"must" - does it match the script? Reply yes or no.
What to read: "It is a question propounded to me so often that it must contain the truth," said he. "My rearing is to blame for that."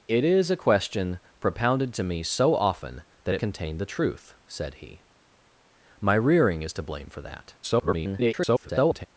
no